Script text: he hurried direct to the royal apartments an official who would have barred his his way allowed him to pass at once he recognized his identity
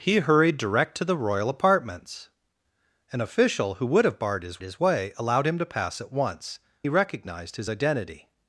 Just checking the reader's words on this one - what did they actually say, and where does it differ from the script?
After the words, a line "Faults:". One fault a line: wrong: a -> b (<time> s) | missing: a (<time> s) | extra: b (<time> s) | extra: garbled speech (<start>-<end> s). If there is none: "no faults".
he hurried direct to the royal apartments an official who would have barred his his way allowed him to pass at once he recognized his identity
Faults:
no faults